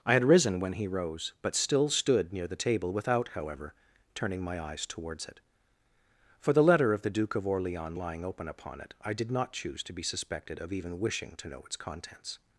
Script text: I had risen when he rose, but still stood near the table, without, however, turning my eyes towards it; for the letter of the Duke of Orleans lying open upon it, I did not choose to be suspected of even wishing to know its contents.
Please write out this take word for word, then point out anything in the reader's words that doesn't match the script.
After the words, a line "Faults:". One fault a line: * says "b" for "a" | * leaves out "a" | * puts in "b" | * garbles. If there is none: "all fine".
I had risen when he rose, but still stood near the table, without, however, turning my eyes towards it; for the letter of the Duke of Orleans lying open upon it, I did not choose to be suspected of even wishing to know its contents.
Faults:
all fine